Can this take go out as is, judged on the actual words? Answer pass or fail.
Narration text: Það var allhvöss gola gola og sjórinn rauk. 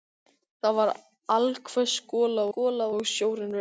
pass